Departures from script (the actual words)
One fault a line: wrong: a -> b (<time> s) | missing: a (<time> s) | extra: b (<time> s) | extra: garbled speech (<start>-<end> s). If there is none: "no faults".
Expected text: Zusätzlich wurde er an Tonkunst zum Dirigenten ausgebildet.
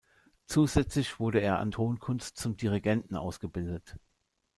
no faults